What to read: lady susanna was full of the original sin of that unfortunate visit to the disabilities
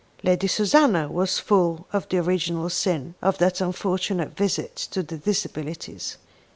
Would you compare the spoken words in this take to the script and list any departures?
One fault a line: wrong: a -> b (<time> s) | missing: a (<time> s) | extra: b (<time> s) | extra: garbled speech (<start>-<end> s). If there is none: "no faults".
no faults